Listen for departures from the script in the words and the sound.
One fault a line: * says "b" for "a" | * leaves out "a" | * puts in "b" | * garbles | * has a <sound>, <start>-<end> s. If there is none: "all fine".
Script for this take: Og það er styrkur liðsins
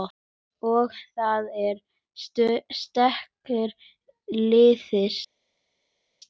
all fine